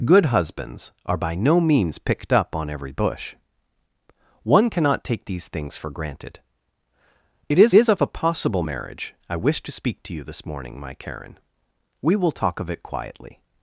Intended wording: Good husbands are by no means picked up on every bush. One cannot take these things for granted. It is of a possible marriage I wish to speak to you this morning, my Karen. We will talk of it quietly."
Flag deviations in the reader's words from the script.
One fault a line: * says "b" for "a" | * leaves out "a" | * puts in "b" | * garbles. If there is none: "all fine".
* puts in "is"